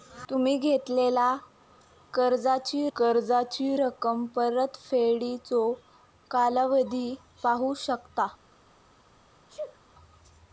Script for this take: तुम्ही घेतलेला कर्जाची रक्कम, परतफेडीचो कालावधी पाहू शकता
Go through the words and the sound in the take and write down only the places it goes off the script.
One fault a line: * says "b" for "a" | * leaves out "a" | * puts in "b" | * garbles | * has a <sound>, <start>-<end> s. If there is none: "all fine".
* puts in "कर्जाची"
* has a sneeze, 9.5-9.8 s